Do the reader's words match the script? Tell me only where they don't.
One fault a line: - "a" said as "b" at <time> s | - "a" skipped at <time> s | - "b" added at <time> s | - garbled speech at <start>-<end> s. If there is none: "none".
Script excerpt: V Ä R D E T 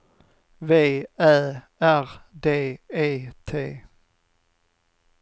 none